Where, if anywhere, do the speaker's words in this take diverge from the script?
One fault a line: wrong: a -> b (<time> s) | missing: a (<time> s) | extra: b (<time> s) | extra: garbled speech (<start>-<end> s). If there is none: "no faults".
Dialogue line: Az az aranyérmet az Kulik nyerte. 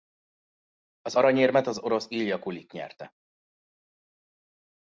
extra: aranyérmet (1.1 s)
wrong: aranyérmet az -> orosz Ilja (1.8 s)